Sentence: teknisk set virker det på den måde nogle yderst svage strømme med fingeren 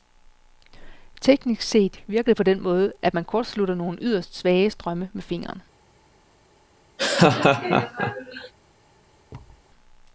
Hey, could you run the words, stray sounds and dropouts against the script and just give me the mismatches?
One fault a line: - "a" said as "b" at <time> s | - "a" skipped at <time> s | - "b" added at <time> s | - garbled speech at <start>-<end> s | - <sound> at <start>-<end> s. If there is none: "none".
- "at man kortslutter" added at 3.0 s
- laugh at 7.0-8.5 s
- thud at 9.3-9.7 s